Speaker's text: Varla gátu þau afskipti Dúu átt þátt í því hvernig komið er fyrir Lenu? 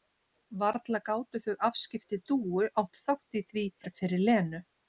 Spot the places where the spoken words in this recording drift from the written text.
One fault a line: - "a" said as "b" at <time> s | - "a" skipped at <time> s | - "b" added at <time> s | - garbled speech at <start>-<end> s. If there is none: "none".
- "hvernig komið" skipped at 3.7 s